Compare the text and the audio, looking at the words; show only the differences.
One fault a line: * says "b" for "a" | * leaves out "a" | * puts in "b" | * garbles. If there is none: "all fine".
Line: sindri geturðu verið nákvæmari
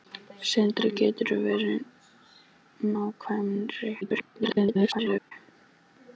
* garbles